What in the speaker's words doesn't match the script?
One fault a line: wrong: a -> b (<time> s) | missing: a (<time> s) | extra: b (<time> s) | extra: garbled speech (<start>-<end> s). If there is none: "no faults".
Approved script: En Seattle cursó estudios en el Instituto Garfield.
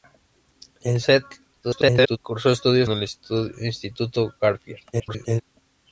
extra: garbled speech (1.6-2.2 s)
missing: en (2.9 s)
extra: garbled speech (4.9-5.4 s)